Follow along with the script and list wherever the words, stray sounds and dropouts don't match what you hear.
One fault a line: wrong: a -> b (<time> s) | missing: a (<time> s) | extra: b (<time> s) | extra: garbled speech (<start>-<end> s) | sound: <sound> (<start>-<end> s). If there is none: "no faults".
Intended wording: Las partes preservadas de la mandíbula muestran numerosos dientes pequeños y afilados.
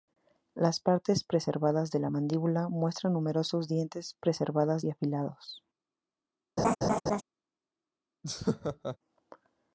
wrong: pequeños -> preservadas (4.2 s)
sound: laugh (6.6-7.2 s)
sound: laugh (8.2-9.0 s)